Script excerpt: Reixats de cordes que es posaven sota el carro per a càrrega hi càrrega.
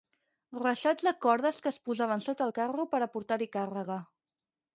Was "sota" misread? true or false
false